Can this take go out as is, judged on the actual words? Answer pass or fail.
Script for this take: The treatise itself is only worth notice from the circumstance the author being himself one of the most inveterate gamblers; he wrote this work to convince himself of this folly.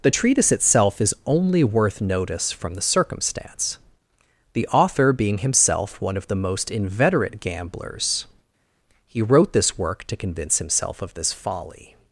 pass